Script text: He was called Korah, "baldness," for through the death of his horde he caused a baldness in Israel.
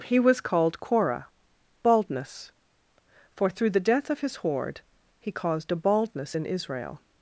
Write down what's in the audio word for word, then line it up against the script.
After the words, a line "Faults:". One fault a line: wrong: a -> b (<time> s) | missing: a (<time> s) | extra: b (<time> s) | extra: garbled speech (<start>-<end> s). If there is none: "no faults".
He was called Korah, "baldness," for through the death of his horde he caused a baldness in Israel.
Faults:
no faults